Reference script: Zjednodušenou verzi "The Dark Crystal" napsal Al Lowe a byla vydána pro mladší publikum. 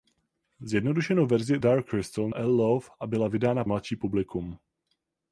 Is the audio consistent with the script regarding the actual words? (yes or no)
no